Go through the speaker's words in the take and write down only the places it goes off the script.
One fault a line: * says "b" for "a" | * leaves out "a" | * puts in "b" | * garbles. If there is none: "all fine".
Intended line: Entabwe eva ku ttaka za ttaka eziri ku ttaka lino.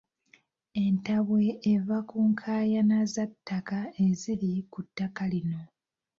* says "nkaayana" for "ttaka"